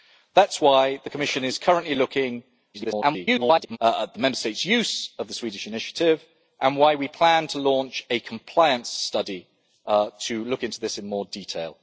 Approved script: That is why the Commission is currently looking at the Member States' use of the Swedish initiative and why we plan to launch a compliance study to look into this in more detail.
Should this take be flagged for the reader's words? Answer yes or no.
yes